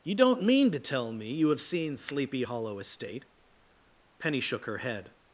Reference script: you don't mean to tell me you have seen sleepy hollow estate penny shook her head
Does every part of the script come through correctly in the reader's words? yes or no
yes